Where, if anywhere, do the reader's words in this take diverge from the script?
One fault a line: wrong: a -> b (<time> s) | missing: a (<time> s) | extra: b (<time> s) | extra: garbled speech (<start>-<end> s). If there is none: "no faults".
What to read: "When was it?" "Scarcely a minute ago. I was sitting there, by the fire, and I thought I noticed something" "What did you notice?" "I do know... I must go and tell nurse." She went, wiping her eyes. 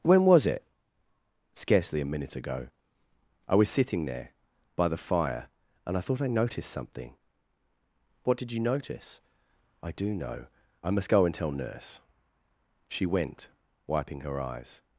no faults